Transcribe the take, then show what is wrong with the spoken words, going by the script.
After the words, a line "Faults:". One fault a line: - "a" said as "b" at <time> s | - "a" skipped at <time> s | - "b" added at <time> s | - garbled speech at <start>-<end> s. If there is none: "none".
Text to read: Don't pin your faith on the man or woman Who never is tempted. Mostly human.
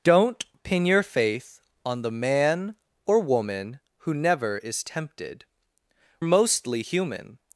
Don't pin your faith on the man or woman Who never is tempted. Mostly human.
Faults:
none